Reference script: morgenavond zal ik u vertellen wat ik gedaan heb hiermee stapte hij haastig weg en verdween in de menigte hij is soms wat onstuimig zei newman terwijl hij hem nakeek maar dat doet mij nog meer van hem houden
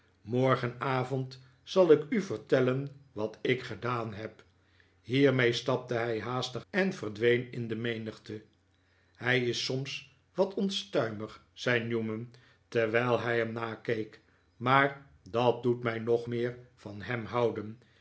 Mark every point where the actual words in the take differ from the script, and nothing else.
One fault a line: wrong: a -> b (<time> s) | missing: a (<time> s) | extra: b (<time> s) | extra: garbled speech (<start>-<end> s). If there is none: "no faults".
missing: weg (6.6 s)